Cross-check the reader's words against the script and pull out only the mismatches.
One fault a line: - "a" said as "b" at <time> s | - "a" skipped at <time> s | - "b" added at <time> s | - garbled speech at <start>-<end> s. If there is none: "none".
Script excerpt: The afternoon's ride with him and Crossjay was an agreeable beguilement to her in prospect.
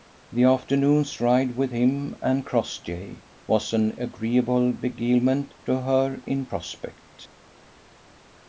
none